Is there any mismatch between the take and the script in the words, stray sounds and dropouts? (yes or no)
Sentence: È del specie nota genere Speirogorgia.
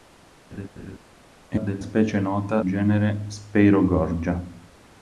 yes